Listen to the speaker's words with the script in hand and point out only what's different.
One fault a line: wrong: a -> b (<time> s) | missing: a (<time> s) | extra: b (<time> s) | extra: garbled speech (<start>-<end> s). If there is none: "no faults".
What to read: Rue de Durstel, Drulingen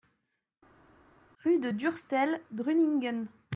no faults